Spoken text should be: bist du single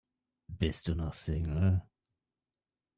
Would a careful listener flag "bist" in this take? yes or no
no